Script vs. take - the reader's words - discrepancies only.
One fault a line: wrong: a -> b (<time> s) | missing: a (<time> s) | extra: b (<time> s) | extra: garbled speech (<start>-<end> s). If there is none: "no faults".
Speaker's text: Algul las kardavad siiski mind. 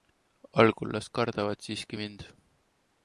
no faults